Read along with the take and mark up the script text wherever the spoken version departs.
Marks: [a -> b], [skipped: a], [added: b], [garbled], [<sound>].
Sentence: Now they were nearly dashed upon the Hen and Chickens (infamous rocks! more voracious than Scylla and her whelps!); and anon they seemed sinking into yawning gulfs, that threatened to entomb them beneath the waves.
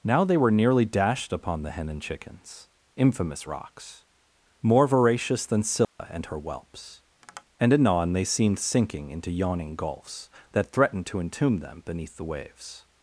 Now they were nearly dashed upon the Hen and Chickens (infamous rocks! more voracious than Scylla [dropout] and her whelps!); [tap] and anon they seemed sinking into yawning gulfs, that threatened to entomb them beneath the waves.